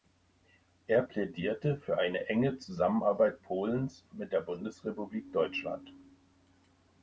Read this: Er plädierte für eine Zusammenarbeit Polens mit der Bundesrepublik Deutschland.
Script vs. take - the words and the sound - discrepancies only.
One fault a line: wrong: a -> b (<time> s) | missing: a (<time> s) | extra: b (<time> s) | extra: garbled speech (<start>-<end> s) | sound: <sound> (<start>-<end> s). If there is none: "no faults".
extra: enge (2.3 s)